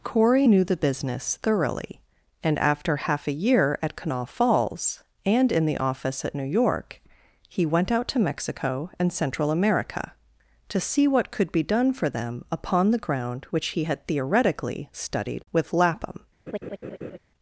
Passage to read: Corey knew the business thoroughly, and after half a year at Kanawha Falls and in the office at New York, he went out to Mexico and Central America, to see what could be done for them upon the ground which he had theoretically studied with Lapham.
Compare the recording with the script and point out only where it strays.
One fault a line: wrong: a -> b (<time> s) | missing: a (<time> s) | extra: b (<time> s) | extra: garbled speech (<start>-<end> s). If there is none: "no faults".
no faults